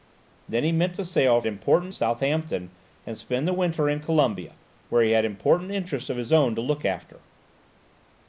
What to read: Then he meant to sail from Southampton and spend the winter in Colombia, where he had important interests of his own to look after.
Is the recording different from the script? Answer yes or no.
yes